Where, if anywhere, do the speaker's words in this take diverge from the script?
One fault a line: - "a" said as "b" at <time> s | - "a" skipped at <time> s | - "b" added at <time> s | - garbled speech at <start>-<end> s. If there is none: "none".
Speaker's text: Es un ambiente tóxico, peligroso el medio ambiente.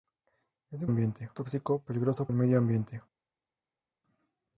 none